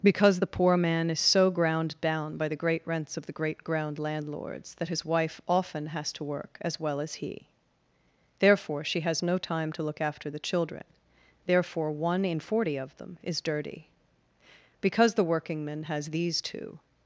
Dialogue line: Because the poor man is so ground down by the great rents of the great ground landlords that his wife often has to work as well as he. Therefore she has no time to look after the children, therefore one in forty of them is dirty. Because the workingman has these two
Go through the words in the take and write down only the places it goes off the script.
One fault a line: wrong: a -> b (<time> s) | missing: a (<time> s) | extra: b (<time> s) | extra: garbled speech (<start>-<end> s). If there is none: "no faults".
no faults